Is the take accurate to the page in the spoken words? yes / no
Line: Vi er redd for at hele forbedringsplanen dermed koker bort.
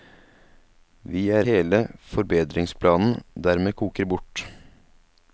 no